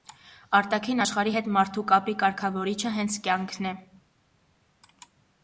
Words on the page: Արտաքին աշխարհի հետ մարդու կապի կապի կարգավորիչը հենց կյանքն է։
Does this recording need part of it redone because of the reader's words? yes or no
yes